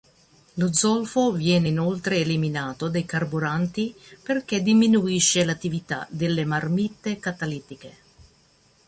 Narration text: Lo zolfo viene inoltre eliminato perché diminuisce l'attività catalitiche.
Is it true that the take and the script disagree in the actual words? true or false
true